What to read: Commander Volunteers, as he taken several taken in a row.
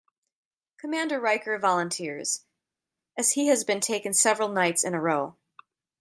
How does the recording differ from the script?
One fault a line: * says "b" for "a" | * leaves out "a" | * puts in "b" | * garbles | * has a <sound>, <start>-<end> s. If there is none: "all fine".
* puts in "Riker"
* puts in "has been"
* says "nights" for "taken"